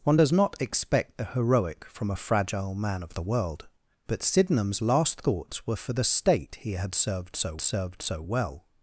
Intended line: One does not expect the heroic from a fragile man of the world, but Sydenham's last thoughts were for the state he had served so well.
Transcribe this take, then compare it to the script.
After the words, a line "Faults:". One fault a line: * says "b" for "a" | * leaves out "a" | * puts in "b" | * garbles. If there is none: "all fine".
One does not expect the heroic from a fragile man of the world, but Sydenham's last thoughts were for the state he had served so served so well.
Faults:
* puts in "served so"